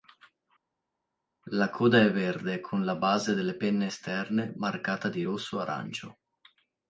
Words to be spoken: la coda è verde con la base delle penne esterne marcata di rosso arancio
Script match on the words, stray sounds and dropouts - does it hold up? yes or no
yes